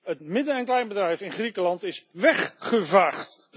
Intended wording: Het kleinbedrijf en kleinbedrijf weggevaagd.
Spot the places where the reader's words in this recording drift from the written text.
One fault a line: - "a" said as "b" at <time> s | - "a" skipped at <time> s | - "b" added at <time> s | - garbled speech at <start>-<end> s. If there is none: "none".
- "kleinbedrijf" said as "midden" at 0.2 s
- "in Griekenland is" added at 1.2 s